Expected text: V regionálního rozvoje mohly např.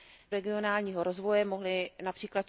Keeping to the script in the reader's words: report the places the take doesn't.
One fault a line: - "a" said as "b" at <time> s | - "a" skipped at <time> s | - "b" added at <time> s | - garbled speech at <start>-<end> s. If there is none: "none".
none